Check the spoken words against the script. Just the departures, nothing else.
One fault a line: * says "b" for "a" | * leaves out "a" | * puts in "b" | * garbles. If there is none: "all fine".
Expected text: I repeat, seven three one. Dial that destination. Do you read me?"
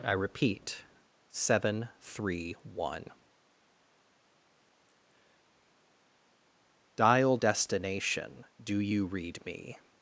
* leaves out "that"